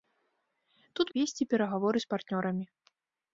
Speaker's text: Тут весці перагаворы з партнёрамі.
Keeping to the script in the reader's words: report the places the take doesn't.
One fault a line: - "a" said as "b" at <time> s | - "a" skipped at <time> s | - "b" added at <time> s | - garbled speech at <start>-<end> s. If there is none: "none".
none